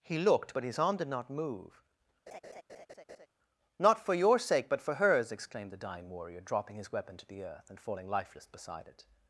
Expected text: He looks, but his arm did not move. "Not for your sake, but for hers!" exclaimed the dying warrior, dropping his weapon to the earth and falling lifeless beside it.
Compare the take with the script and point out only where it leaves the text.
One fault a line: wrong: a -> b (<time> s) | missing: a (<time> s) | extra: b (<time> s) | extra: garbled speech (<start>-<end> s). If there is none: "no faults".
wrong: looks -> looked (0.2 s)